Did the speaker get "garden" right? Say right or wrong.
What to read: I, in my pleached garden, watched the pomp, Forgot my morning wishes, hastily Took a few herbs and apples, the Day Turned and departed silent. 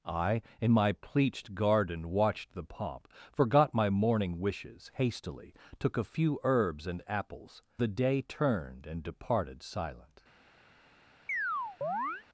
right